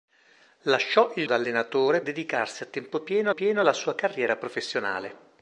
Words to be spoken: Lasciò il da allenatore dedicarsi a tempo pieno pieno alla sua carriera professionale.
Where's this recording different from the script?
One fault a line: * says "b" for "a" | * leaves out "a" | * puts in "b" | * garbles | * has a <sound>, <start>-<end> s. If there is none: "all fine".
all fine